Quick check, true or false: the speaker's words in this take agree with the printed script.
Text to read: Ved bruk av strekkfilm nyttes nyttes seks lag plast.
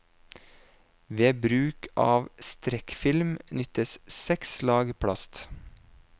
false